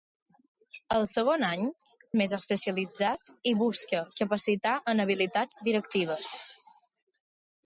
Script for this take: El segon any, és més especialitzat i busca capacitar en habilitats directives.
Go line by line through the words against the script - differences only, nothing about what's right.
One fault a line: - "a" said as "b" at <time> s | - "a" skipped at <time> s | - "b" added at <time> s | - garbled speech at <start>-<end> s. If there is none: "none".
- "és" skipped at 1.7 s